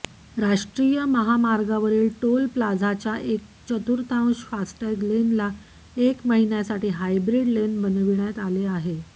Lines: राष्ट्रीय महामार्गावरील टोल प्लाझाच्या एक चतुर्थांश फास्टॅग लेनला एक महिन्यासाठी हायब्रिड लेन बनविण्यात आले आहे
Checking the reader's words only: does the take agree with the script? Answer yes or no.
yes